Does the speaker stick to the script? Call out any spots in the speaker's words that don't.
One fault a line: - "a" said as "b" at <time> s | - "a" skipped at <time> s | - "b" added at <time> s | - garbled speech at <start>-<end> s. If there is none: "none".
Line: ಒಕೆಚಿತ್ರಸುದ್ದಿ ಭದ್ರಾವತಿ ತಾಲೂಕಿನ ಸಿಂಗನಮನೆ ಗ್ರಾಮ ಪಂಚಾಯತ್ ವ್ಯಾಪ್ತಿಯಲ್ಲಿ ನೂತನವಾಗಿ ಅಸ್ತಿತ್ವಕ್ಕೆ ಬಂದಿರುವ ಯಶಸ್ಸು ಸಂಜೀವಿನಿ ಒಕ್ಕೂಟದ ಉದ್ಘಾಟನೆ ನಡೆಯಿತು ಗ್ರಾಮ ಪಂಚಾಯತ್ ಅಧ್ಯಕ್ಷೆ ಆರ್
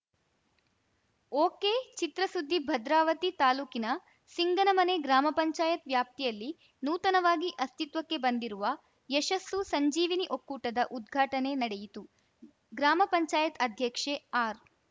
none